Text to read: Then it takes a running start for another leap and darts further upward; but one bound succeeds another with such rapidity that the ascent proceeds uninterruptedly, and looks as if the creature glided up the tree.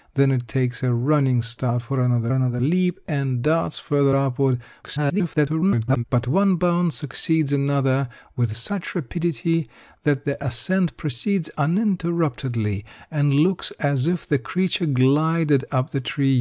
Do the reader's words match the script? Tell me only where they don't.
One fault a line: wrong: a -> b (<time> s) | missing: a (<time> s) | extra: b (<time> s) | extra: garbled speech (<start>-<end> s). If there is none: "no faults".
extra: another (2.3 s)
extra: garbled speech (4.8-6.0 s)